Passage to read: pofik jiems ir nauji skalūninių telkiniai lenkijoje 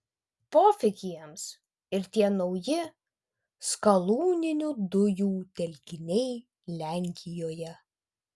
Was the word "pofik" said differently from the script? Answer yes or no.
no